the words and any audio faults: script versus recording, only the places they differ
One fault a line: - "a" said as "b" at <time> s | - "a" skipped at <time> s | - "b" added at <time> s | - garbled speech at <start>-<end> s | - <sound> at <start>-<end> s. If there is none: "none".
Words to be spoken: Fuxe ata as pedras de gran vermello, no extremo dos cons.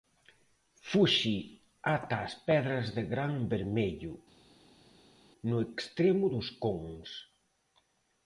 none